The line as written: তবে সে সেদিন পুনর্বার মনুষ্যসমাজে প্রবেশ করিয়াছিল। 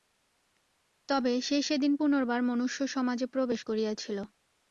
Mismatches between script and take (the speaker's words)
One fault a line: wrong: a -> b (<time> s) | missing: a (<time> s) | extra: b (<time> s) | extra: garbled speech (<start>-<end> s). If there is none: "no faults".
no faults